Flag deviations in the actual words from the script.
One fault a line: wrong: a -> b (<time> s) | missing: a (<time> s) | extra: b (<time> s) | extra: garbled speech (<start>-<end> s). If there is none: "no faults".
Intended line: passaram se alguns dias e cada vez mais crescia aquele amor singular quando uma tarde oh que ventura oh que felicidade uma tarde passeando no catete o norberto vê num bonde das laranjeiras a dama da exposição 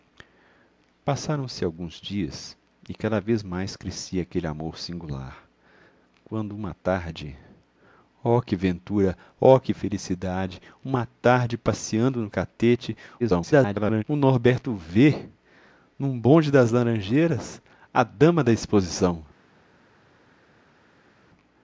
extra: garbled speech (13.2-14.0 s)